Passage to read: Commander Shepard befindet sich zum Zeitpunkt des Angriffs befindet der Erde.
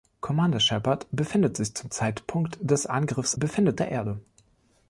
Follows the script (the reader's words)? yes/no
yes